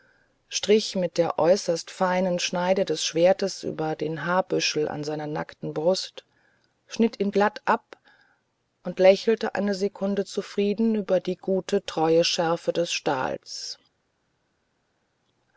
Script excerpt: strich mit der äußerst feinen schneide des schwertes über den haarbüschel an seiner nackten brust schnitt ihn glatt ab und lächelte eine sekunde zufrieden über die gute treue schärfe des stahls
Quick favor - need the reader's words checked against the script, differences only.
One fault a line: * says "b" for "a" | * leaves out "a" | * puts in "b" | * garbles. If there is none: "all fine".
all fine